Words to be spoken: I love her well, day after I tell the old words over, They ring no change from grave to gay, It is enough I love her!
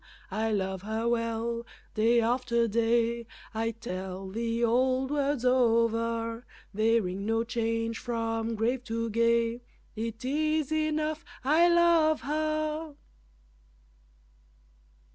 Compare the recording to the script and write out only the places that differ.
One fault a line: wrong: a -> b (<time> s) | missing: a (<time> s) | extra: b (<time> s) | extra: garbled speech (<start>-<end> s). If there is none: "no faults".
extra: day (2.7 s)